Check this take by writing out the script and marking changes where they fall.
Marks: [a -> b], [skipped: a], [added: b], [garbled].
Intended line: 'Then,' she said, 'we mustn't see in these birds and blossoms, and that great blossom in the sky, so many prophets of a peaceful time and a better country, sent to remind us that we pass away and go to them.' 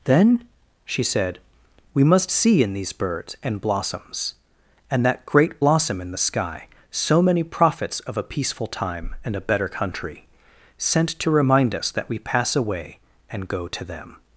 'Then,' she said, 'we [mustn't -> must] see in these birds and blossoms, and that great blossom in the sky, so many prophets of a peaceful time and a better country, sent to remind us that we pass away and go to them.'